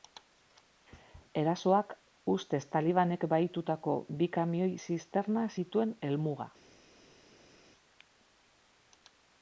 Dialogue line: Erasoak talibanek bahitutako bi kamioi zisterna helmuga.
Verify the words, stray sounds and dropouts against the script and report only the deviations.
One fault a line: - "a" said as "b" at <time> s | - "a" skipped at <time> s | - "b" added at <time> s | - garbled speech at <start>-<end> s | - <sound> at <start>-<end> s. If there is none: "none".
- "ustez" added at 2.4 s
- "zituen" added at 5.6 s